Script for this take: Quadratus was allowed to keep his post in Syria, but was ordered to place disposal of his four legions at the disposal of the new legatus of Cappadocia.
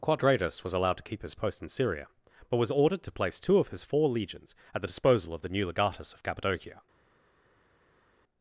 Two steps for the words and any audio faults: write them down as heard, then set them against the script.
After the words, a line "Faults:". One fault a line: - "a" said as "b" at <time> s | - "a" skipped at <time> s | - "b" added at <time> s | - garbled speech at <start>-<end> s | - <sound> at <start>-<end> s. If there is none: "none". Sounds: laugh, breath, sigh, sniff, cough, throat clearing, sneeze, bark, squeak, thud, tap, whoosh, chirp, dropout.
Quadratus was allowed to keep his post in Syria, but was ordered to place two of his four legions at the disposal of the new legatus of Cappadocia.
Faults:
- "disposal" said as "two" at 3.4 s